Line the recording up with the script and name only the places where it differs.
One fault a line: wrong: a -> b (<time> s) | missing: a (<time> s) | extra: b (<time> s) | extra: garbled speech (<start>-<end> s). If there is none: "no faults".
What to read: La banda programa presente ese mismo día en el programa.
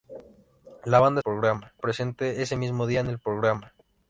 no faults